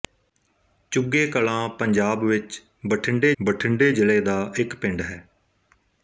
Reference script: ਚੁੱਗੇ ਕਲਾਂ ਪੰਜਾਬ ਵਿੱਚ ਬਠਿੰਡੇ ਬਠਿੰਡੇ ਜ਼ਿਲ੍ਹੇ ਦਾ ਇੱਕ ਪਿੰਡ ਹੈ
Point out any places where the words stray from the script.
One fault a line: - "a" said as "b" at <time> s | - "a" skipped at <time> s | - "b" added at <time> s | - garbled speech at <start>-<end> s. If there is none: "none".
none